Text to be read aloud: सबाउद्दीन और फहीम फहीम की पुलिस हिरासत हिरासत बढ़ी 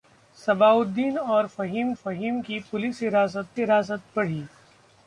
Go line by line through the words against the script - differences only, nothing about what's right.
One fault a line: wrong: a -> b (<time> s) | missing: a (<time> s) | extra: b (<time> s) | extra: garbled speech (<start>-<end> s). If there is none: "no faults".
no faults